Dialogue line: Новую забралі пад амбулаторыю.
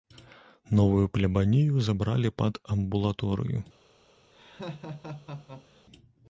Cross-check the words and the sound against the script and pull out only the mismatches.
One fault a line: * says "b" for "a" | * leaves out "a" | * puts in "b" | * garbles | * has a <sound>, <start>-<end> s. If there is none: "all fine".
* puts in "плябанію"
* has a laugh, 4.3-5.8 s